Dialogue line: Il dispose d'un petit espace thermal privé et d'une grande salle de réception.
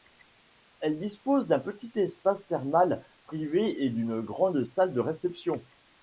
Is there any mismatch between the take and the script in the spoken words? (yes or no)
yes